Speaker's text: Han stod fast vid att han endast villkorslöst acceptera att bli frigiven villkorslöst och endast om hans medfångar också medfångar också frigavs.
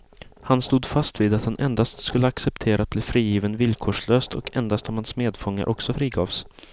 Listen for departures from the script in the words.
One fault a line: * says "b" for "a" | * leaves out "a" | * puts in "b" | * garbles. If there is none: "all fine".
* says "skulle" for "villkorslöst"
* leaves out "medfångar också"